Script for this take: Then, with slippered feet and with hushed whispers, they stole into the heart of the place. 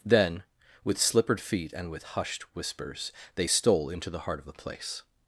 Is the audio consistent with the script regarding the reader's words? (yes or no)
yes